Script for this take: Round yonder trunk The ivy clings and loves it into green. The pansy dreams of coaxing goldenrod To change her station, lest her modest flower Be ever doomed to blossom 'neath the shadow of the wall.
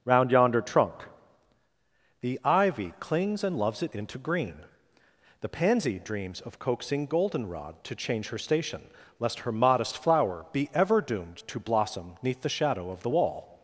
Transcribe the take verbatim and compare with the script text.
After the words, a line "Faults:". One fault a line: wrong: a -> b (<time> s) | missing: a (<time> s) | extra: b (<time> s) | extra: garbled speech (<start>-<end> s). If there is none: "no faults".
Round yonder trunk The ivy clings and loves it into green. The pansy dreams of coaxing goldenrod To change her station, lest her modest flower Be ever doomed to blossom 'neath the shadow of the wall.
Faults:
no faults